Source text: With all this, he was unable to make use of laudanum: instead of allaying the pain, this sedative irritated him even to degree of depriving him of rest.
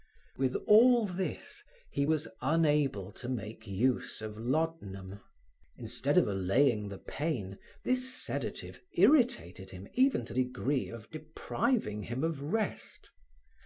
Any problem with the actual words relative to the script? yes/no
no